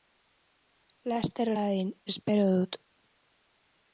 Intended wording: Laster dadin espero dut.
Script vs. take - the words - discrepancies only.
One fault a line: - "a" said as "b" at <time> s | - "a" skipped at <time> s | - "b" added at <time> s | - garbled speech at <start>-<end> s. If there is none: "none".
none